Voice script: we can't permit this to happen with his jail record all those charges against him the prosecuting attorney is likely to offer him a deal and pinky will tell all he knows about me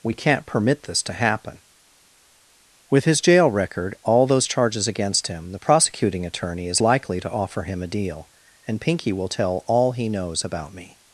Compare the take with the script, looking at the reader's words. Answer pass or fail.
pass